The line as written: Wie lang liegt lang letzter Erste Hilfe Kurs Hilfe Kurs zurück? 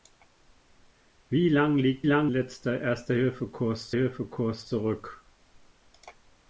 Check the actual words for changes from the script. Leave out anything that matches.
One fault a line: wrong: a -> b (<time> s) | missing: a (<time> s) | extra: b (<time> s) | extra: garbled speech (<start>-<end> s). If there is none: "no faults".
no faults